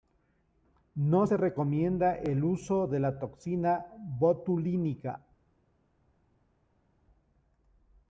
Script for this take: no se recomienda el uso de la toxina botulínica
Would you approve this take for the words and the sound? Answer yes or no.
yes